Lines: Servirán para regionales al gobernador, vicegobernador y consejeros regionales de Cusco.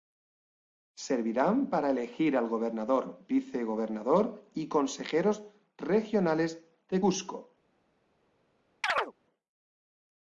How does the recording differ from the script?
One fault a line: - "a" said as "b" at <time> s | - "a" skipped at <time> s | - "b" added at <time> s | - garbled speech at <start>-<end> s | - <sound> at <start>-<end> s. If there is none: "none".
- "regionales" said as "elegir" at 1.9 s
- chirp at 8.8-9.1 s